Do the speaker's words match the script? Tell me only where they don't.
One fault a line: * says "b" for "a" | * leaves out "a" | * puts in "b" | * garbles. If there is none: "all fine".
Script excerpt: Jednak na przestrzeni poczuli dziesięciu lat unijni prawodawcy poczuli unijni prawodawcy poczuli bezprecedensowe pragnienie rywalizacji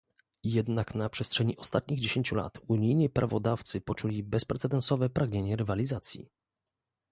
* says "ostatnich" for "poczuli"
* leaves out "unijni prawodawcy poczuli"